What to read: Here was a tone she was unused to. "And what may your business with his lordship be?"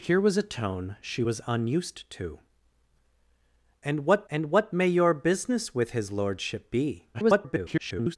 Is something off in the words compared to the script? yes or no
yes